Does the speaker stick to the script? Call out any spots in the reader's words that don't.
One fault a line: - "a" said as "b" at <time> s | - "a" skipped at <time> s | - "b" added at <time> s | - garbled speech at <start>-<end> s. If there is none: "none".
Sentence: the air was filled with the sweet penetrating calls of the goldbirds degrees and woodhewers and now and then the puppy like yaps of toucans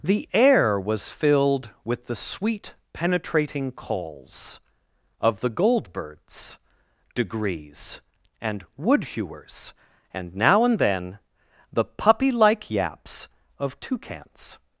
none